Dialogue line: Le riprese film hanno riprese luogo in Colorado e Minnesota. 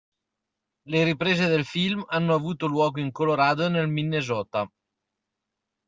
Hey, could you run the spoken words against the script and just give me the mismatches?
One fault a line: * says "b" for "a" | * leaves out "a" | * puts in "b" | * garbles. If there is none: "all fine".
* puts in "del"
* says "avuto" for "riprese"
* puts in "nel"